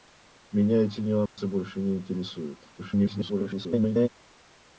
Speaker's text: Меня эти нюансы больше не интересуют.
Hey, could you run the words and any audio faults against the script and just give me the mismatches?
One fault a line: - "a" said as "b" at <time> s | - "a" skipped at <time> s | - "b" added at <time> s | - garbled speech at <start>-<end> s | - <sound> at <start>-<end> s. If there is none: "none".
- dropout at 1.3-1.4 s
- garbled speech at 2.8-4.1 s